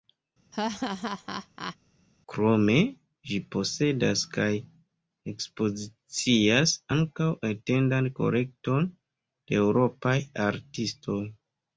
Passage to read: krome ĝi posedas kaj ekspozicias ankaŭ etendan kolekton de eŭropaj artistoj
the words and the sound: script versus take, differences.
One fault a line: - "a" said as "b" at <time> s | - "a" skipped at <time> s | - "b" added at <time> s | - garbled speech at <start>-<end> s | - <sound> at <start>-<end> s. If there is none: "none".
- laugh at 0.5-1.8 s